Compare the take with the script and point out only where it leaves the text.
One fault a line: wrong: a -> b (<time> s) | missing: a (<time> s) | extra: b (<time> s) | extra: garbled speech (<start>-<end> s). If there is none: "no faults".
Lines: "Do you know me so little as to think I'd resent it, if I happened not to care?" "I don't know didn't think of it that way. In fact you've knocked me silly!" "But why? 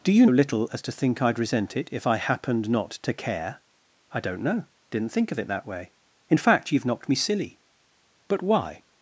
missing: know me so (0.2 s)